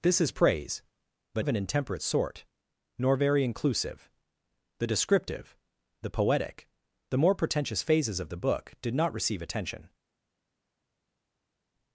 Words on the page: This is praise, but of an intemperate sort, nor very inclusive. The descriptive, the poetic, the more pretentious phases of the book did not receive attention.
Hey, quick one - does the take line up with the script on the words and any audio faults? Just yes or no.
yes